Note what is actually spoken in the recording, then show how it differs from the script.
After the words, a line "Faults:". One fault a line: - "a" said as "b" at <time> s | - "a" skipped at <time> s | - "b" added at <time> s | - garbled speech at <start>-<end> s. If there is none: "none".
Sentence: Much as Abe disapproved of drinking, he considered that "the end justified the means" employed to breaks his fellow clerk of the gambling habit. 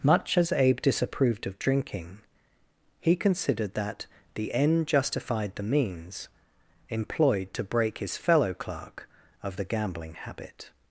Much as Abe disapproved of drinking, he considered that "the end justified the means" employed to break his fellow clerk of the gambling habit.
Faults:
- "breaks" said as "break" at 7.6 s